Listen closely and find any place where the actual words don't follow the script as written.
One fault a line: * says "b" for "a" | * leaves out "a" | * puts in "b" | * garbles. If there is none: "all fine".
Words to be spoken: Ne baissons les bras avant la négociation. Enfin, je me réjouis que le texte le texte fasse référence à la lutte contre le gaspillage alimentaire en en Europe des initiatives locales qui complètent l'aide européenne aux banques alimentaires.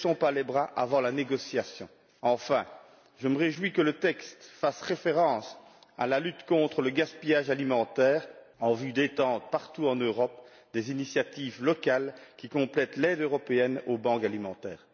* puts in "pas"
* leaves out "le texte"
* puts in "vue d'étendre partout"